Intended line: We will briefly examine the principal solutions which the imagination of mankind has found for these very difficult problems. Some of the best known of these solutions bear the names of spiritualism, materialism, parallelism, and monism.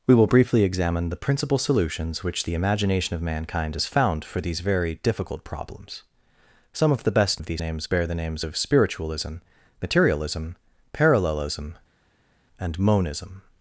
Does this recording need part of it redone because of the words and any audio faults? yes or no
yes